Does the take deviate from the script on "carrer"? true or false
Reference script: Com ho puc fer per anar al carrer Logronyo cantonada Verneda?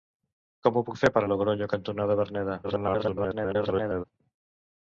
true